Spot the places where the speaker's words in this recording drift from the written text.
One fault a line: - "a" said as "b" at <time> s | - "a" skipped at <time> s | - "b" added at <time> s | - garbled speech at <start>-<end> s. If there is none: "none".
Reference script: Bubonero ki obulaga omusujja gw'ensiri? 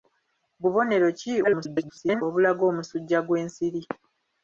- garbled speech at 1.4-2.2 s